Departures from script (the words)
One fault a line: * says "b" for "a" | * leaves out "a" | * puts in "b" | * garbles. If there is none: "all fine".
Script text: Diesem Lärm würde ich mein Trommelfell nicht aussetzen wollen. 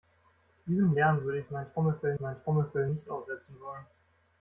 * puts in "mein Trommelfell"